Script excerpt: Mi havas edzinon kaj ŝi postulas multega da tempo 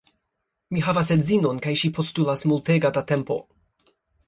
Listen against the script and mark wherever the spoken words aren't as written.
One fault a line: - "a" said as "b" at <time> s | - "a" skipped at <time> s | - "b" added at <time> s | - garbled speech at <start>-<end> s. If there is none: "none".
none